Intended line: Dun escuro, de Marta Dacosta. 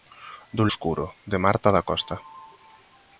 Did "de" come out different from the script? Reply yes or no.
no